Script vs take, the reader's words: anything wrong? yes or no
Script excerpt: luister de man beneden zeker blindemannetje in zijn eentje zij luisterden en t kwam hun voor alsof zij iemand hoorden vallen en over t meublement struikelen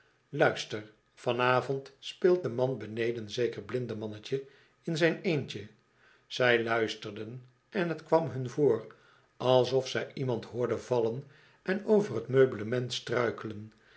yes